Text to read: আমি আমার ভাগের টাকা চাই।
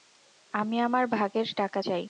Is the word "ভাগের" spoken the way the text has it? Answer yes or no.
yes